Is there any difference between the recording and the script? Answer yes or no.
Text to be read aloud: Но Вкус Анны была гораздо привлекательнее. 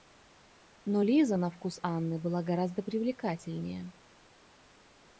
yes